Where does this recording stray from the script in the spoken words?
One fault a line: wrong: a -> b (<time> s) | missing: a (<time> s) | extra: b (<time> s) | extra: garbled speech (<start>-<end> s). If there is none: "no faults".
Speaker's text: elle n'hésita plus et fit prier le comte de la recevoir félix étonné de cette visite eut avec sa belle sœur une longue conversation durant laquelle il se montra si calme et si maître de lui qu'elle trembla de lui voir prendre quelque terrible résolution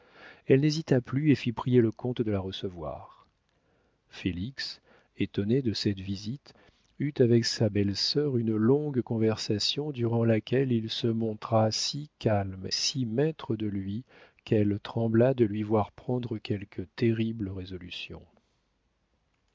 missing: et (12.7 s)